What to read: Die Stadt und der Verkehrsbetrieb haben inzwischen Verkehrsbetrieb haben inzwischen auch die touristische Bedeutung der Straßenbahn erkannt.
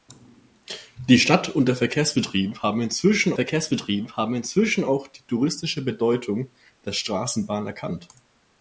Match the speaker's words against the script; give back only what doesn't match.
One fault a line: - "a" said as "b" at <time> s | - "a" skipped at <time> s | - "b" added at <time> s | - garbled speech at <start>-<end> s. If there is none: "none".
none